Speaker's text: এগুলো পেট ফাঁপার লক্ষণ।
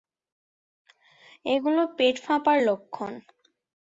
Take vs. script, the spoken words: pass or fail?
pass